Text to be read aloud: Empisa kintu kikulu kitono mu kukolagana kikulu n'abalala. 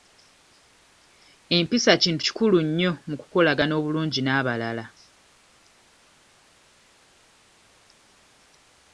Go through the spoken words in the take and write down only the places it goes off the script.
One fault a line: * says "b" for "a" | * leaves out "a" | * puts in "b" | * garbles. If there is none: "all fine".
* says "nnyo" for "kitono"
* says "obulungi" for "kikulu"